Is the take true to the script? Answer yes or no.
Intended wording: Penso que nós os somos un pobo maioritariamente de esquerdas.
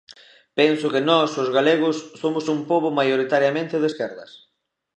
no